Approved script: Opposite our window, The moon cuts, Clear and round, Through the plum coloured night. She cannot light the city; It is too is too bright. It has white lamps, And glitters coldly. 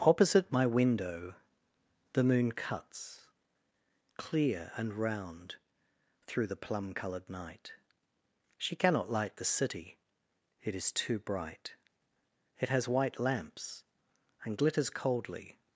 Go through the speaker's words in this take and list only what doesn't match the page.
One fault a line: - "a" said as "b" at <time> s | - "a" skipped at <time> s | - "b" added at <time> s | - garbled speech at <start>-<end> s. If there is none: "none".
- "our" said as "my" at 0.5 s
- "is too" skipped at 11.2 s